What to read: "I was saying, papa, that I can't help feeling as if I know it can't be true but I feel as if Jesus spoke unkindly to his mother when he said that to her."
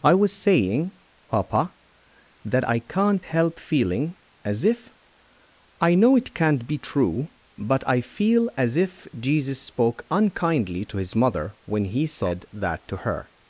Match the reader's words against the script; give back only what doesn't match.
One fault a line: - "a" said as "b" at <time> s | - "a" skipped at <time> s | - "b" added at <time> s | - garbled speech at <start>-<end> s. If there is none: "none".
none